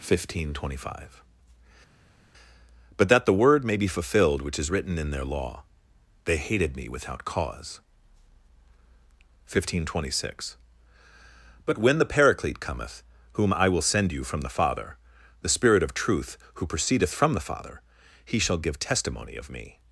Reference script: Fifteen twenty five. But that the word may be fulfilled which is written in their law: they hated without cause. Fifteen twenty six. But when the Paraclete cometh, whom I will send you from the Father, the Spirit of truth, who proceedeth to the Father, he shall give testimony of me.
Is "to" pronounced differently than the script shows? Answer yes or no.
yes